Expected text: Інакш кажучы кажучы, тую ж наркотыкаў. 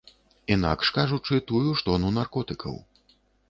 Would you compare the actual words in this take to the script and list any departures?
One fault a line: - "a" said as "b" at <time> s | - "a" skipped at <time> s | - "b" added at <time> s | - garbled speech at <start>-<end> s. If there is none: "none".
- "кажучы" skipped at 1.4 s
- "тону" added at 1.9 s